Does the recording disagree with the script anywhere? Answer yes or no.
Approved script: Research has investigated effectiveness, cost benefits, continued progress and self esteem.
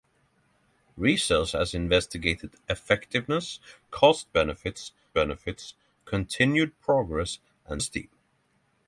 yes